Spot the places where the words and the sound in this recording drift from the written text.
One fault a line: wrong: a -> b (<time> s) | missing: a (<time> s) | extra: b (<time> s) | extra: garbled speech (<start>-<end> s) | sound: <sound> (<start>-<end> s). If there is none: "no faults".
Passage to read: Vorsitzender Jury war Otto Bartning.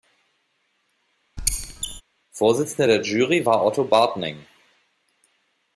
sound: squeak (1.4-2.0 s)
extra: der (2.9 s)